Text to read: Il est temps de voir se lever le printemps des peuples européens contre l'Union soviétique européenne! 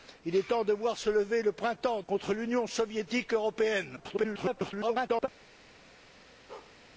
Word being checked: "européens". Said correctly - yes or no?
no